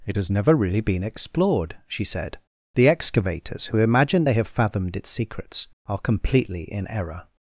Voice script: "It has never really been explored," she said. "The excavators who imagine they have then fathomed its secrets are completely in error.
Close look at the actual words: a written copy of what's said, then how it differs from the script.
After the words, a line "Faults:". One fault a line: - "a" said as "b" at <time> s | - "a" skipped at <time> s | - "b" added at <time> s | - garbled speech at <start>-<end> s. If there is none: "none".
"It has never really been explored," she said. "The excavators who imagine they have fathomed its secrets are completely in error.
Faults:
- "then" skipped at 4.5 s